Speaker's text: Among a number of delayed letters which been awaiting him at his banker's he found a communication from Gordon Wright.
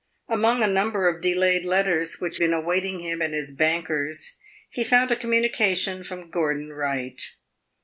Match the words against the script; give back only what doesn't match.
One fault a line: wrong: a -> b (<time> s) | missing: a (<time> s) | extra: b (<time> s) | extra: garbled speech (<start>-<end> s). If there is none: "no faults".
no faults